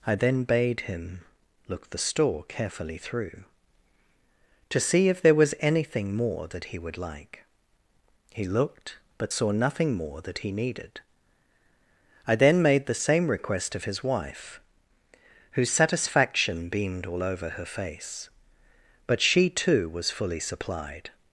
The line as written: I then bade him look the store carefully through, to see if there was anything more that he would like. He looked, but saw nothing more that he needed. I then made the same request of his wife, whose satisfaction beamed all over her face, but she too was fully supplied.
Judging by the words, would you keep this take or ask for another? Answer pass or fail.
pass